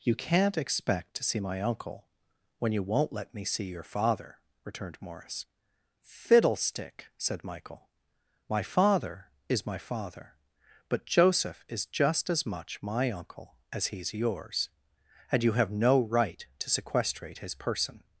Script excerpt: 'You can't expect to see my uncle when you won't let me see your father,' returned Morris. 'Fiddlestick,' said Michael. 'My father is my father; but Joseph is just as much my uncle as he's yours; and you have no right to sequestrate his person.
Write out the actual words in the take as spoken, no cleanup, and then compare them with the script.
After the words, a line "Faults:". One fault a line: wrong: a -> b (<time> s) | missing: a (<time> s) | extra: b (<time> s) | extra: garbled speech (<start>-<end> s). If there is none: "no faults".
'You can't expect to see my uncle when you won't let me see your father,' returned Morris. 'Fiddlestick,' said Michael. 'My father is my father; but Joseph is just as much my uncle as he's yours; and you have no right to sequestrate his person.
Faults:
no faults